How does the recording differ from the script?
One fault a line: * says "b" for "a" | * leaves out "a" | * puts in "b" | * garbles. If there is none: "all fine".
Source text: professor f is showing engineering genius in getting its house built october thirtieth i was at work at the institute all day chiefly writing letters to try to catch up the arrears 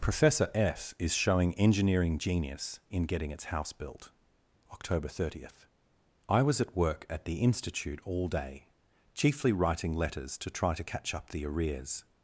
all fine